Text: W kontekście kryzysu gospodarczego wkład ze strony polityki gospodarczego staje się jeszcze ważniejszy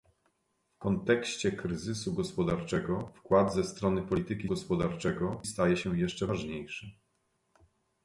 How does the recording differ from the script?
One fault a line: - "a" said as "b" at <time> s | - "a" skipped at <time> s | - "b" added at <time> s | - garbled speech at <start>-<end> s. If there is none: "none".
none